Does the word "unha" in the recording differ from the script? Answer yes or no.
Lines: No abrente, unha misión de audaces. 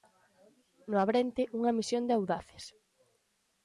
no